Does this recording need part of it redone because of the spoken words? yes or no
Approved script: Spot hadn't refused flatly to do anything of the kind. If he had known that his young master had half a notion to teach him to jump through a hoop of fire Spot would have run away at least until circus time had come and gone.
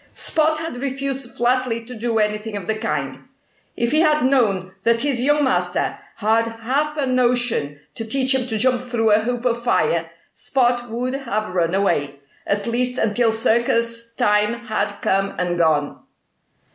yes